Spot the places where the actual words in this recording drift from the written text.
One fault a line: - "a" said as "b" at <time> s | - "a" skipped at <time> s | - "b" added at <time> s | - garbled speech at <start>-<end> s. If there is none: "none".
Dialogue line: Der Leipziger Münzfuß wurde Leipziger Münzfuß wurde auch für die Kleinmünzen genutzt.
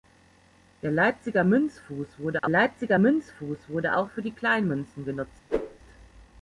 none